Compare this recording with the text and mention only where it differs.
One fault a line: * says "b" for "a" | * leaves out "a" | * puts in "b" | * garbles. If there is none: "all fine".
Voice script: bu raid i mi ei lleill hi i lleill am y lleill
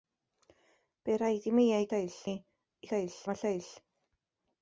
all fine